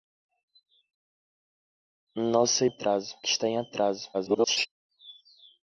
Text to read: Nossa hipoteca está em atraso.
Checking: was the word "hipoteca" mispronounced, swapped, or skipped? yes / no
yes